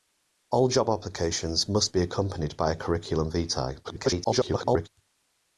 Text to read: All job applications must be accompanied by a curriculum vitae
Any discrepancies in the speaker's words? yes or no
yes